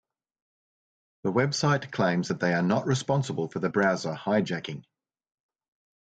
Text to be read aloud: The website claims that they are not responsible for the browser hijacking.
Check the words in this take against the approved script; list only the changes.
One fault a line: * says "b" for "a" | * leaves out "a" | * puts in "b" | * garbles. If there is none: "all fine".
all fine